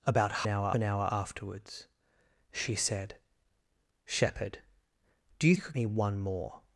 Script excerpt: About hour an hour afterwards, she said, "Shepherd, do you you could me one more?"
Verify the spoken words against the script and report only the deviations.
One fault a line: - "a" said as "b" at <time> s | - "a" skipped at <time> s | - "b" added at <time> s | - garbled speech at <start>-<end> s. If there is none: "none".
none